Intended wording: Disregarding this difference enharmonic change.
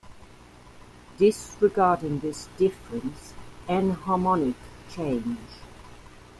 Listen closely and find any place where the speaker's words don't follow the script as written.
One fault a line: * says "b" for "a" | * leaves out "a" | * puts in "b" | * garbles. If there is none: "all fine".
all fine